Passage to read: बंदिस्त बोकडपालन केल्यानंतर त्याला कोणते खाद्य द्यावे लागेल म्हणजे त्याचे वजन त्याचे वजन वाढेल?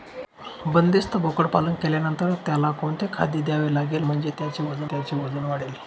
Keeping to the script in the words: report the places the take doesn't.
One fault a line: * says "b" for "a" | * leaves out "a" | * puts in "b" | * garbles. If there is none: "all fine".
all fine